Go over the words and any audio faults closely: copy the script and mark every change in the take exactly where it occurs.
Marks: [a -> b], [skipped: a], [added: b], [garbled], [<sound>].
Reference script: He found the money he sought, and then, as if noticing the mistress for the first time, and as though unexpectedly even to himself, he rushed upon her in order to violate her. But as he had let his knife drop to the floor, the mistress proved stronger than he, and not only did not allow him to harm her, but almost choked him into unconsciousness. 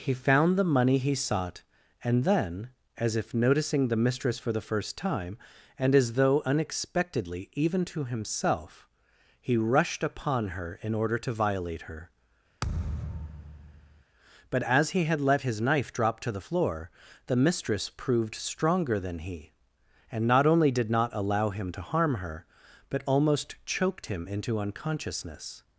He found the money he sought, and then, as if noticing the mistress for the first time, and as though unexpectedly even to himself, he rushed upon her in order to violate her. [thud] But as he had let his knife drop to the floor, the mistress proved stronger than he, and not only did not allow him to harm her, but almost choked him into unconsciousness.